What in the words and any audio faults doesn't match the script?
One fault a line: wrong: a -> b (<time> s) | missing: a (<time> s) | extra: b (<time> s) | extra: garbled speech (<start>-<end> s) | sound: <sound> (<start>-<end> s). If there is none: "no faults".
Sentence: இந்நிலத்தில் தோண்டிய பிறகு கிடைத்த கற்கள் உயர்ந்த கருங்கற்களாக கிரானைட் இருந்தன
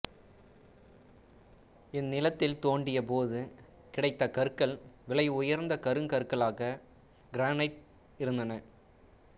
wrong: பிறகு -> போது (3.0 s)
extra: விலை (5.1 s)